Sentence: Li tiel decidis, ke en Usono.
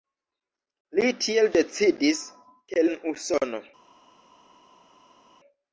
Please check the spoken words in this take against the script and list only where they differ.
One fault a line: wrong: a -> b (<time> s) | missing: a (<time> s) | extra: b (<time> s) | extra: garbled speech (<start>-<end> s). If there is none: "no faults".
no faults